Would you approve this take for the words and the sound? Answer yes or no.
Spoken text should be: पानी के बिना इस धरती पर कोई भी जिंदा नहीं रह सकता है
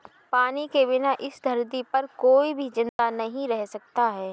no